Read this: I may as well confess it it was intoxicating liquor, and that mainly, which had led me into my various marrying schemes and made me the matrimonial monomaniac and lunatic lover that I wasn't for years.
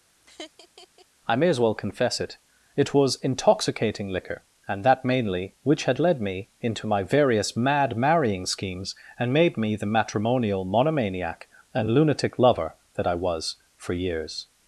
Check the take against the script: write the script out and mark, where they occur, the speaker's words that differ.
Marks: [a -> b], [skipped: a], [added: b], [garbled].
I may as well confess it it was intoxicating liquor, and that mainly, which had led me into my various [added: mad] marrying schemes and made me the matrimonial monomaniac and lunatic lover that I [wasn't -> was] for years.